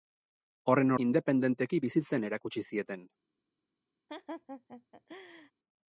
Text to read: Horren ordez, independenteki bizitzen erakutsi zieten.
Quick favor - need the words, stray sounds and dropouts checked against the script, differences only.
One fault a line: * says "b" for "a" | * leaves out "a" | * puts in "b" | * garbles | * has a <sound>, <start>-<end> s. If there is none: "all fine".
* leaves out "ordez"
* has a laugh, 4.1-5.5 s